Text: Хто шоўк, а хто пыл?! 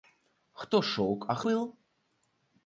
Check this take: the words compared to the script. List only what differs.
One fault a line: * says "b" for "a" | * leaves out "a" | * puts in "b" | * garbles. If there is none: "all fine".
* leaves out "хто"